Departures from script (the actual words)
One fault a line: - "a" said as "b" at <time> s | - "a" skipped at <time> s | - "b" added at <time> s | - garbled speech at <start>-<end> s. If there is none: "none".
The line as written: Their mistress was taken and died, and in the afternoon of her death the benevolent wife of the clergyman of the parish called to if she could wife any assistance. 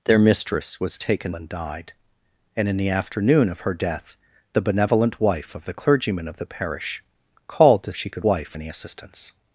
none